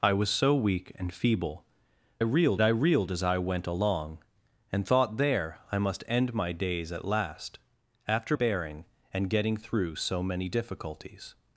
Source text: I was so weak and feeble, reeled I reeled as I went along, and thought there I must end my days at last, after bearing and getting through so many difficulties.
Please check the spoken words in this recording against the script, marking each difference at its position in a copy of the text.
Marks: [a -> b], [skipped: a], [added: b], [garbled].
I was so weak and feeble, reeled I reeled as I went along, and thought there I must end my days at last, after bearing and getting through so many difficulties.